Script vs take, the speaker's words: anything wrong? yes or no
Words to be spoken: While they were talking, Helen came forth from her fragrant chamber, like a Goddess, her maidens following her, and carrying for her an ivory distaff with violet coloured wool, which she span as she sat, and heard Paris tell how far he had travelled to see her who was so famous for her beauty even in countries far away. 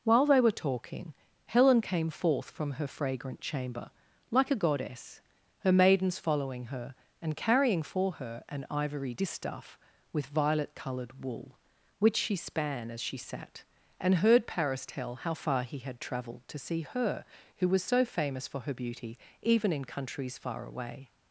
no